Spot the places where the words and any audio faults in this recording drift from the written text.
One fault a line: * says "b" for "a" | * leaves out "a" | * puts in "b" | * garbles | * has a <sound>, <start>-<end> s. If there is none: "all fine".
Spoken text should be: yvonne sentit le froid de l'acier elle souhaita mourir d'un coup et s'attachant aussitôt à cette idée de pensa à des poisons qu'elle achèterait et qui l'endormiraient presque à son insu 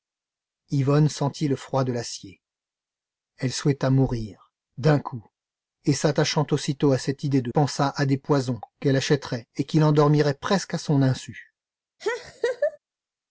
* has a laugh, 12.0-12.8 s